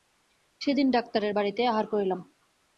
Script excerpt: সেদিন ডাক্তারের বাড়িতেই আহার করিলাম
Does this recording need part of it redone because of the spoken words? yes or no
no